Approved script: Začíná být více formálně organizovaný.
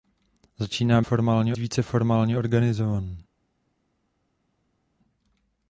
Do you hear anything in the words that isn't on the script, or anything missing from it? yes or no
yes